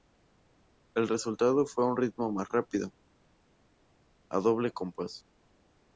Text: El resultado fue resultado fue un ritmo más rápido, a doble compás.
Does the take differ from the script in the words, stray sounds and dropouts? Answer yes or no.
yes